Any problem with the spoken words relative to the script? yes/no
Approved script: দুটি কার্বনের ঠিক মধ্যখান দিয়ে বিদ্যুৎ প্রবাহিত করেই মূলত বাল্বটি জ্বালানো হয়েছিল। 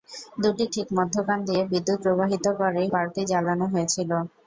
yes